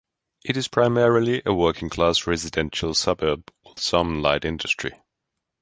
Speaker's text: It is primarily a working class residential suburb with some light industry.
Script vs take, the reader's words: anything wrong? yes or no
no